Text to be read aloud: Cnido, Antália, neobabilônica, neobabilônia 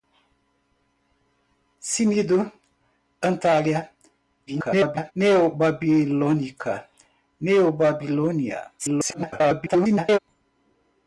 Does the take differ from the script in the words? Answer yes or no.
yes